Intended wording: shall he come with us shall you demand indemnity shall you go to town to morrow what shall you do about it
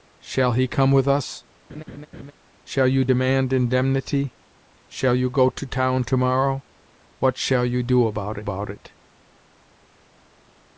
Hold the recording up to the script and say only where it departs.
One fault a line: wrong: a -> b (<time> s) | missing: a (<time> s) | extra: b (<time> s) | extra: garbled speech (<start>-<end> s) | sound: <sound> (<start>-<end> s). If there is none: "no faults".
sound: laugh (1.7-2.3 s)
extra: about (8.4 s)